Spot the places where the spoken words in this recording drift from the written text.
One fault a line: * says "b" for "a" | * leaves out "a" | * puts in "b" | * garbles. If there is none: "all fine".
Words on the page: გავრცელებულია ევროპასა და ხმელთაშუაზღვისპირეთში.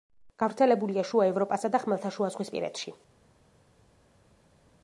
* puts in "შუა"